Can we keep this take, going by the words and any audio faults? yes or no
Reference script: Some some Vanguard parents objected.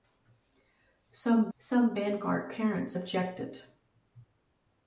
yes